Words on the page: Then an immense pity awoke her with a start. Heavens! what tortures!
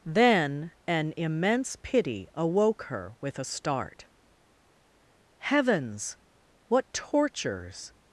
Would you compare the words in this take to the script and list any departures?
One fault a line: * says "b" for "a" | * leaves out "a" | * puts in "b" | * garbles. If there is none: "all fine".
all fine